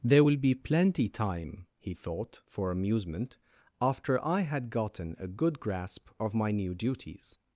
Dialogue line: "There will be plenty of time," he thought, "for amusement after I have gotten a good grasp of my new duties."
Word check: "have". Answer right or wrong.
wrong